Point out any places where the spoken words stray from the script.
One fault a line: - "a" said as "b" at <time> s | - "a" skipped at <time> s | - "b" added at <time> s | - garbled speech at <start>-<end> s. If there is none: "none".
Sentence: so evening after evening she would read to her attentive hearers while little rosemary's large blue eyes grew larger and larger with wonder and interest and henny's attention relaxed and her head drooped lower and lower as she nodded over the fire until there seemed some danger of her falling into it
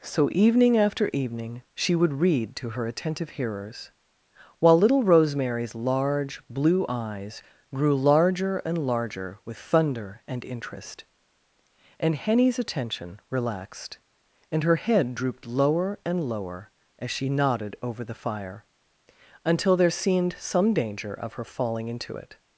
- "wonder" said as "thunder" at 9.6 s